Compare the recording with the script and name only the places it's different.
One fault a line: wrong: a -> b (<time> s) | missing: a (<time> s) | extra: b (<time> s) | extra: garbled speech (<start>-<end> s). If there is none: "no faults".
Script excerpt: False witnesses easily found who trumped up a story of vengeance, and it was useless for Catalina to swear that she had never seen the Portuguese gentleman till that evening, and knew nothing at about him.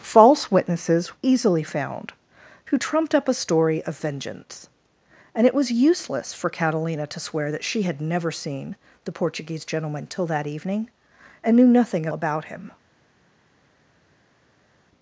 no faults